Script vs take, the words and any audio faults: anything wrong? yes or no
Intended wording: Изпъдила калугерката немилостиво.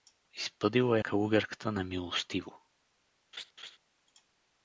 yes